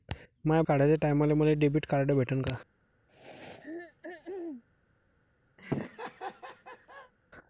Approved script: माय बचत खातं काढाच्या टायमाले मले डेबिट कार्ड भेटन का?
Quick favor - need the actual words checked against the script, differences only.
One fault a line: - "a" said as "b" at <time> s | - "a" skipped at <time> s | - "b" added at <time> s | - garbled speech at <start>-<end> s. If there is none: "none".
- "बचत खातं" skipped at 0.6 s